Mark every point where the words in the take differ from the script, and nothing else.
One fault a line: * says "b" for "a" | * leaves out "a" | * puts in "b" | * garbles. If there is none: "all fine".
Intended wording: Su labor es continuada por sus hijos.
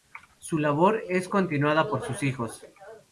all fine